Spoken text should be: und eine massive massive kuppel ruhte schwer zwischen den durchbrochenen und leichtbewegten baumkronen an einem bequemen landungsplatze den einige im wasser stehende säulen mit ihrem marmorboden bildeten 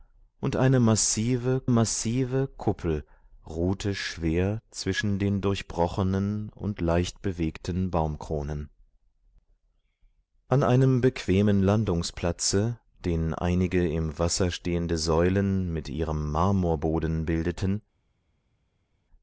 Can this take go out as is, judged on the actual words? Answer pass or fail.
pass